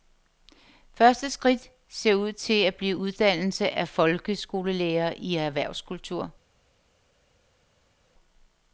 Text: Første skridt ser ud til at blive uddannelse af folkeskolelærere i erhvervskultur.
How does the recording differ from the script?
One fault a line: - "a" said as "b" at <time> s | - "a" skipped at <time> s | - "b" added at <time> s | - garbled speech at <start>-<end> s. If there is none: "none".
none